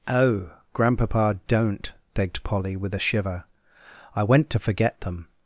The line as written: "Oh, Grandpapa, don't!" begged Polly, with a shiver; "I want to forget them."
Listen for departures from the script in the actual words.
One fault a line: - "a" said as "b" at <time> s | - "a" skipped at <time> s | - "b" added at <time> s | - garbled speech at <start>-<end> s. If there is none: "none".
- "want" said as "went" at 4.2 s